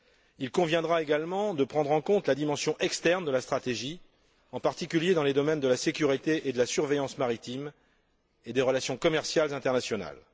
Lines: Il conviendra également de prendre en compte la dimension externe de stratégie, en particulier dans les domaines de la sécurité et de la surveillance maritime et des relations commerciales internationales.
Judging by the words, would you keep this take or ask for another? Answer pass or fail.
fail